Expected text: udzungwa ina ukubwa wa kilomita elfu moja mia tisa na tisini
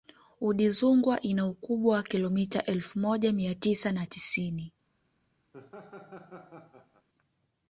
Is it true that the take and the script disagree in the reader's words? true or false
false